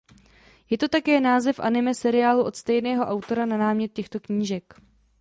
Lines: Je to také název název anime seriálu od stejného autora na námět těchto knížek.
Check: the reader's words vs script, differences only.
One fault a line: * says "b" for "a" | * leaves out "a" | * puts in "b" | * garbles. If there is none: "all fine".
* leaves out "název"